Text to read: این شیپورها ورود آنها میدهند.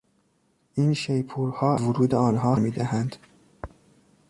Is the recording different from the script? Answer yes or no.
no